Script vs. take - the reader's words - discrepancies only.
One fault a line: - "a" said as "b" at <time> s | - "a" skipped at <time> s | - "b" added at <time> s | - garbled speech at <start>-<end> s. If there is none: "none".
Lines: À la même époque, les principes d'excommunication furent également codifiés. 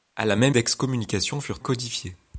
- "époque les principes" skipped at 0.6 s
- "également" skipped at 1.6 s